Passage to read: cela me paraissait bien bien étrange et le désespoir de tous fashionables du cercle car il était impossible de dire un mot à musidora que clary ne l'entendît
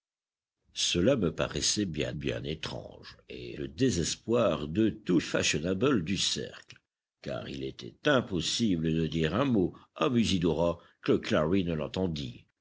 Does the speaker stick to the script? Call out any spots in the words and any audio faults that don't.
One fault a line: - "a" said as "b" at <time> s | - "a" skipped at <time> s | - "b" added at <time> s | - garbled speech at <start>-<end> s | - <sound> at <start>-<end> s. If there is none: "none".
none